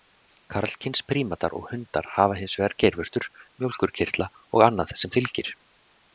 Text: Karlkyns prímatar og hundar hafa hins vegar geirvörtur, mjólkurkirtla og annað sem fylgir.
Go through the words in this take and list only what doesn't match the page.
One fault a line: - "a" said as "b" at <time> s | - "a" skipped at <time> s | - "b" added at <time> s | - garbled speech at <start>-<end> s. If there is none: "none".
none